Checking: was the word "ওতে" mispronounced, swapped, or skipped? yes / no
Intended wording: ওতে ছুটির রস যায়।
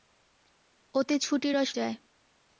no